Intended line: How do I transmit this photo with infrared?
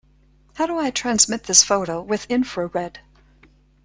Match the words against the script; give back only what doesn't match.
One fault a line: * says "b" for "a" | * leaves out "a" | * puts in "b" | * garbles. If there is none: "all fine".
all fine